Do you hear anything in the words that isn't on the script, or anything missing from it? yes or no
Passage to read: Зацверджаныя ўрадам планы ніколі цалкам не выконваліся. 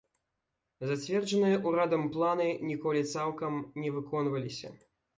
no